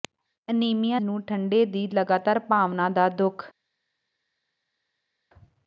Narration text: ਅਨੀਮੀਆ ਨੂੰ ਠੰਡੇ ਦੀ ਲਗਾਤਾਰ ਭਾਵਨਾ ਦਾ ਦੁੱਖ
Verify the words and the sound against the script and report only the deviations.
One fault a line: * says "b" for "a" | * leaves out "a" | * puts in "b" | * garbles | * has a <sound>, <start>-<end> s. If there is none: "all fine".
all fine